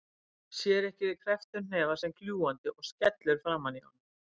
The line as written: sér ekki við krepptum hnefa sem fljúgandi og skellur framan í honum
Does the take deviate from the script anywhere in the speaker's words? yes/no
no